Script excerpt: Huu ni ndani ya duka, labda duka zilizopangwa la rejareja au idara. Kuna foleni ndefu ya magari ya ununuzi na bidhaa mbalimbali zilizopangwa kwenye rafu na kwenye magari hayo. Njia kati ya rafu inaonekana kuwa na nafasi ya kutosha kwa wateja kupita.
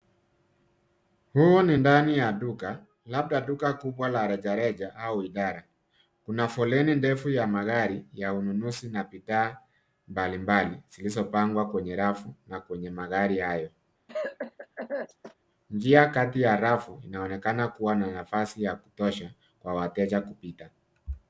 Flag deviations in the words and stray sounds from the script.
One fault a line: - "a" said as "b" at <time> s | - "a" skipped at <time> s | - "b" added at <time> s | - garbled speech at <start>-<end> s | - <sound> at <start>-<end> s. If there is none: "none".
- "zilizopangwa" said as "kubwa" at 3.7 s
- cough at 14.1-15.3 s